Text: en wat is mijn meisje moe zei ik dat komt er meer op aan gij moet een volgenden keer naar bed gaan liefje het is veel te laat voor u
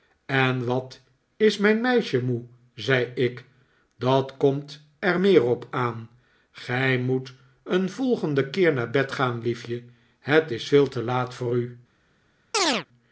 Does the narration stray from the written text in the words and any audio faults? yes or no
yes